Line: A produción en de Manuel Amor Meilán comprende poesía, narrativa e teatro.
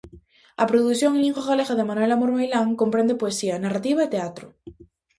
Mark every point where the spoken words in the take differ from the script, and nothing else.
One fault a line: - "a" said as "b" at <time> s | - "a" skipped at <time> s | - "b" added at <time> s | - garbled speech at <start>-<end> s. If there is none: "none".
- "lingua galega" added at 1.2 s